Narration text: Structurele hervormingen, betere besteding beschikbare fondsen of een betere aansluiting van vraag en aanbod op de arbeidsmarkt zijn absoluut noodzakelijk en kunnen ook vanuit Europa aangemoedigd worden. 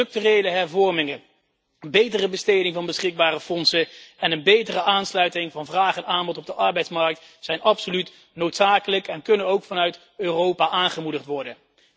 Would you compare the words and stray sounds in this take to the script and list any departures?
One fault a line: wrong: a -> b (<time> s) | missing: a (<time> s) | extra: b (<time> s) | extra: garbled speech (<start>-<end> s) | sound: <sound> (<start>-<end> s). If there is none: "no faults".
extra: van (2.8 s)
wrong: of -> en (4.2 s)